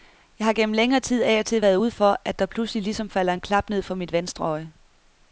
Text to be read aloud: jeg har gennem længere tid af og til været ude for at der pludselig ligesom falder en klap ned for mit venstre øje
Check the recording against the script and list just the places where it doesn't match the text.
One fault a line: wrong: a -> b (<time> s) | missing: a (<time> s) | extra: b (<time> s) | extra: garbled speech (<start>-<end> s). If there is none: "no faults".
no faults